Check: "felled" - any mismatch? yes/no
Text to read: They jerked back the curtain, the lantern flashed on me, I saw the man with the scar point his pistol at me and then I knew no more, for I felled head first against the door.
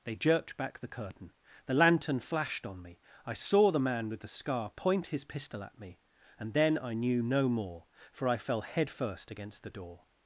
yes